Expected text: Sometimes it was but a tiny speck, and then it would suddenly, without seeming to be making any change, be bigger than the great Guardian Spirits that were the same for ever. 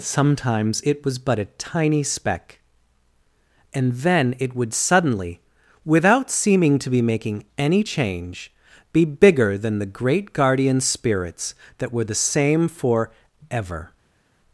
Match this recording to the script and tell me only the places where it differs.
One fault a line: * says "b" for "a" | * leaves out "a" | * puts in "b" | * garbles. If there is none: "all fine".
all fine